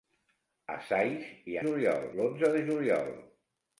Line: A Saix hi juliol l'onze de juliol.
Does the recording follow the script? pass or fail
pass